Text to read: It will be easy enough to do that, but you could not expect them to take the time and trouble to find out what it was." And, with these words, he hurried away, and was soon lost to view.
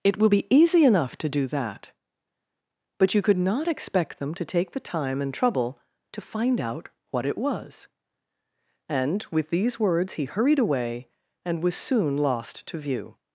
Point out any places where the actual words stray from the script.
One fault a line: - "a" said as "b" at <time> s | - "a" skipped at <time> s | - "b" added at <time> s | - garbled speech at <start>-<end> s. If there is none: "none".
none